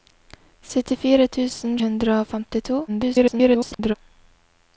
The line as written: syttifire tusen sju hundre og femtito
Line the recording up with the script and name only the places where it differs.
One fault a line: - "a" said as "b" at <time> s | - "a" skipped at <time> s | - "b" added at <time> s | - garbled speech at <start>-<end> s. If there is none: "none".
- "sju" skipped at 1.8 s
- garbled speech at 2.9-3.9 s